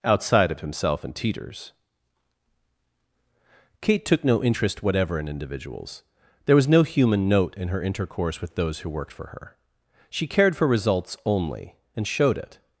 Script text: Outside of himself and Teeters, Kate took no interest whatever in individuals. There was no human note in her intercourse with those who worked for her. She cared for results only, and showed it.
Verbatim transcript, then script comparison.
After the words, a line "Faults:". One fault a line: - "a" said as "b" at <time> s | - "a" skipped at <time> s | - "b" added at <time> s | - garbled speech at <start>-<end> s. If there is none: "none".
Outside of himself and Teeters, Kate took no interest whatever in individuals. There was no human note in her intercourse with those who worked for her. She cared for results only, and showed it.
Faults:
none